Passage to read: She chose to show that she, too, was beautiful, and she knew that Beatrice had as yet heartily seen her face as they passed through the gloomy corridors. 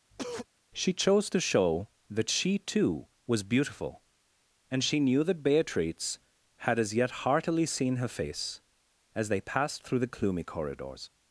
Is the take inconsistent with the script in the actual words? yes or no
no